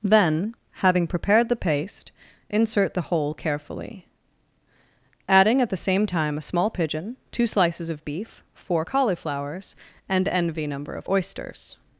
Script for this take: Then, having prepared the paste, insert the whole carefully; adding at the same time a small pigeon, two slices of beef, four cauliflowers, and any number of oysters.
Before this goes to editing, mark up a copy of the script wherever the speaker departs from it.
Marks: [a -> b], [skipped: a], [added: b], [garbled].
Then, having prepared the paste, insert the whole carefully; adding at the same time a small pigeon, two slices of beef, four cauliflowers, and [any -> envy] number of oysters.